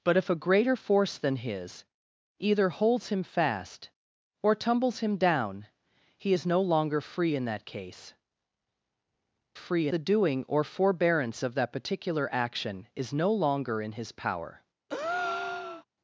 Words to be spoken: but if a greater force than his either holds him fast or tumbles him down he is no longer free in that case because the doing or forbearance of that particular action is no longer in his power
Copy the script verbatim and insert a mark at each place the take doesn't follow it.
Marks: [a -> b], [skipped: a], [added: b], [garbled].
but if a greater force than his either holds him fast or tumbles him down he is no longer free in that case [because -> free] the doing or forbearance of that particular action is no longer in his power